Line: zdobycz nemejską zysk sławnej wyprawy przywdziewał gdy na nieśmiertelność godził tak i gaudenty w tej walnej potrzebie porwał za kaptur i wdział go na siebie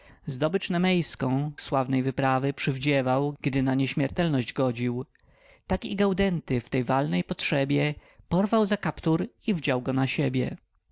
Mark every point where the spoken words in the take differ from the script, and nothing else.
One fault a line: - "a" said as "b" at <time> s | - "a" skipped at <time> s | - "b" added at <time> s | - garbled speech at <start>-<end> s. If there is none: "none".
- "zysk" skipped at 1.5 s